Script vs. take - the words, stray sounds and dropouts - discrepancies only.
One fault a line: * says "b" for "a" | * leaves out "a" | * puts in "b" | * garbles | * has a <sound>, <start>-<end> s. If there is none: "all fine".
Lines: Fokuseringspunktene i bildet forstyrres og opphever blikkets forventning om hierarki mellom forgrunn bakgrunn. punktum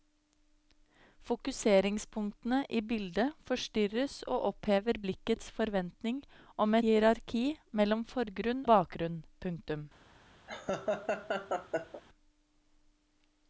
* has a laugh, 10.5-12.0 s